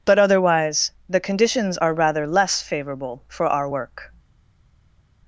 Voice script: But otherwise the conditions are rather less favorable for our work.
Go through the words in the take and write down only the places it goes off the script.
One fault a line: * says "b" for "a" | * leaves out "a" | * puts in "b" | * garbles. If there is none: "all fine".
all fine